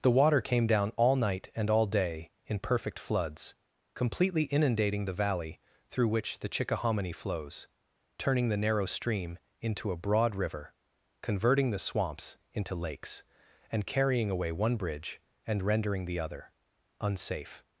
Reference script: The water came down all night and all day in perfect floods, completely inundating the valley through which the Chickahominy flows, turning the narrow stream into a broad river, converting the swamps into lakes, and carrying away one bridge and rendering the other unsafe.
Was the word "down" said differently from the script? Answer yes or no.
no